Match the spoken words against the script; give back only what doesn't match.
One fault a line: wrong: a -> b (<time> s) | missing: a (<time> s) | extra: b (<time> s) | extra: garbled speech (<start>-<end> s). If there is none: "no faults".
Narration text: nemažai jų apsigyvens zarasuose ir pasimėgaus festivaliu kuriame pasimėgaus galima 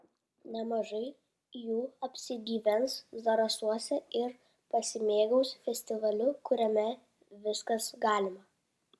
wrong: pasimėgaus -> viskas (7.5 s)